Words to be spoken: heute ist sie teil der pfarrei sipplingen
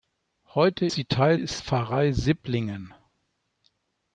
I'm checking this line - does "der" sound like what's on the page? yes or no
no